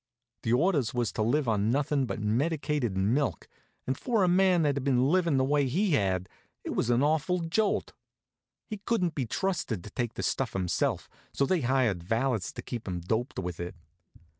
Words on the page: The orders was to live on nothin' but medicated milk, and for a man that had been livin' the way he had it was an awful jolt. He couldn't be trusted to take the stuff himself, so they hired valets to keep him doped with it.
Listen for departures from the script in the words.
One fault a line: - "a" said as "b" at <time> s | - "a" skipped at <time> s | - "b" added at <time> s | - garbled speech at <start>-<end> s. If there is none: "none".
none